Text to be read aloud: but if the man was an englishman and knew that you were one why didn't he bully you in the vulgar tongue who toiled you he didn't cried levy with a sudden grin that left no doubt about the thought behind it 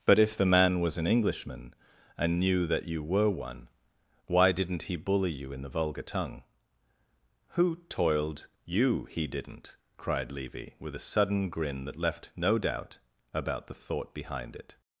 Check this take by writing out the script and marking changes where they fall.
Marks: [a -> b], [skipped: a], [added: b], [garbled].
but if the man was an englishman and knew that you were one why didn't he bully you in the vulgar tongue who toiled you he didn't cried levy with a sudden grin that left no doubt about the thought behind it